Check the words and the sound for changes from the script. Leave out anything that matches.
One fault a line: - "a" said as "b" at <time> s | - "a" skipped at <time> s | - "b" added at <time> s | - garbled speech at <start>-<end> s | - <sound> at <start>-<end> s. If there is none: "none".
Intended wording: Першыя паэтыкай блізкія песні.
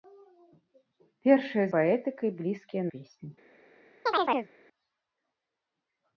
- chirp at 4.1-4.5 s